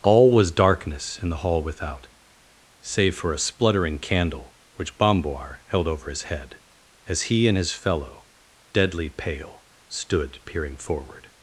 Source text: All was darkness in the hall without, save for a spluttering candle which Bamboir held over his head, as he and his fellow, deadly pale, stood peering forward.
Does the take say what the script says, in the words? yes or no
yes